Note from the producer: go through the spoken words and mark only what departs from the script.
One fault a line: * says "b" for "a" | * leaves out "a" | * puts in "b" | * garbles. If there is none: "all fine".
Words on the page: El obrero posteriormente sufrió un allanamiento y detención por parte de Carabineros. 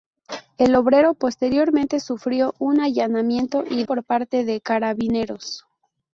* leaves out "detención"